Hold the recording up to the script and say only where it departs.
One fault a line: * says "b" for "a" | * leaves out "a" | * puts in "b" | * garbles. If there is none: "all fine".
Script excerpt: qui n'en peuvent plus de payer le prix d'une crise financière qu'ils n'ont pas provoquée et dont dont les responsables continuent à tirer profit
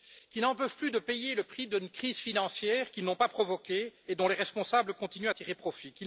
* leaves out "dont"